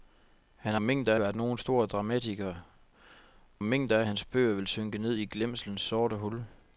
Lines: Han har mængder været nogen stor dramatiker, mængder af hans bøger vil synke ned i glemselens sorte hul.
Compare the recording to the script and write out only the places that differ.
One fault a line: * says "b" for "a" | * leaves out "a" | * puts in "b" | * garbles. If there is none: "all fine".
all fine